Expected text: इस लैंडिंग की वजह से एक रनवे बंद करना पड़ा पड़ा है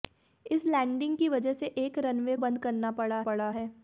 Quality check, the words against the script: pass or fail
pass